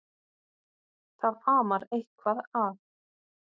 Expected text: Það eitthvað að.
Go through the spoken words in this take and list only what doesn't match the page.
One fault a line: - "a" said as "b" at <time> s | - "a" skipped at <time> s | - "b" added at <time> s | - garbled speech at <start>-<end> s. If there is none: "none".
- "amar" added at 1.5 s